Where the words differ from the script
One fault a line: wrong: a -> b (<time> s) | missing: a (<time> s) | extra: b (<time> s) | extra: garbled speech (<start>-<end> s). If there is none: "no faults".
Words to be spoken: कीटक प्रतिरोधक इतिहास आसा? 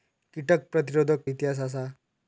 no faults